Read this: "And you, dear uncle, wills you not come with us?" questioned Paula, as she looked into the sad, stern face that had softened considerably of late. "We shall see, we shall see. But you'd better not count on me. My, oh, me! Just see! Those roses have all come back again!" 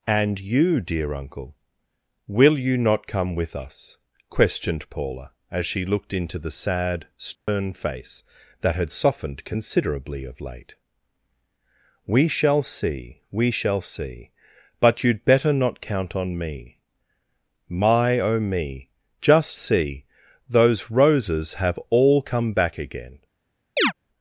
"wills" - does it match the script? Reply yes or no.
no